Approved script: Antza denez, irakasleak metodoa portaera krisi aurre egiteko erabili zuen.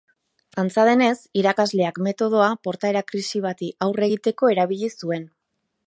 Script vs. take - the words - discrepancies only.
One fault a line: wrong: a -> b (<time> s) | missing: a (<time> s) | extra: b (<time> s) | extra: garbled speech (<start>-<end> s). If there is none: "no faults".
extra: bati (3.5 s)